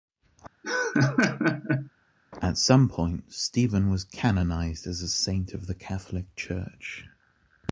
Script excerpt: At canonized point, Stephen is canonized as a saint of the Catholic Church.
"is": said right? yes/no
no